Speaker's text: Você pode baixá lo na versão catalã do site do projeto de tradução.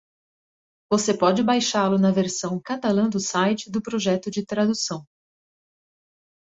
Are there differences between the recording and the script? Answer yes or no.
no